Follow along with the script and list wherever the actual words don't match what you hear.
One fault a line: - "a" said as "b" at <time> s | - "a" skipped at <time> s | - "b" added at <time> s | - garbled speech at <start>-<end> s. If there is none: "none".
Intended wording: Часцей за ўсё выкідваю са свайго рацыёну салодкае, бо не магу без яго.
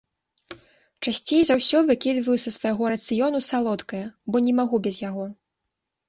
none